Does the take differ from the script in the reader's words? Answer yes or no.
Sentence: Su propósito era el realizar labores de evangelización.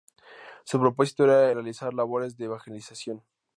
yes